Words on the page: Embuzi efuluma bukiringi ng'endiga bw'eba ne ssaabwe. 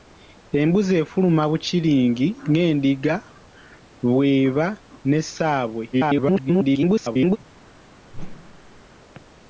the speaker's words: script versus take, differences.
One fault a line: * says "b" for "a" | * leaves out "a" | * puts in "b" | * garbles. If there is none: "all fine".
* garbles